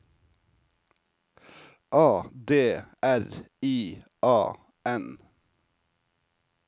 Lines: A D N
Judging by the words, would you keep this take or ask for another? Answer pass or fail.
fail